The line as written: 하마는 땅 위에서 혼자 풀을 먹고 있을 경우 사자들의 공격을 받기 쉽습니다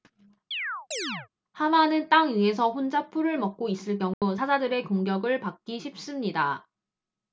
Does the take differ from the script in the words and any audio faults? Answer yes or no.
yes